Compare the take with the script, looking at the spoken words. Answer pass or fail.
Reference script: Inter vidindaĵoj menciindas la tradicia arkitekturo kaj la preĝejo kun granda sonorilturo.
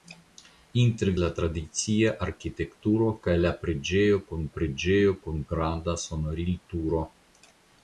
fail